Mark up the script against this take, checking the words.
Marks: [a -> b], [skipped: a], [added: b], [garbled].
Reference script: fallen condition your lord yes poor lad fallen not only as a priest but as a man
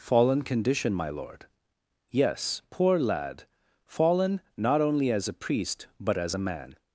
fallen condition [your -> my] lord yes poor lad fallen not only as a priest but as a man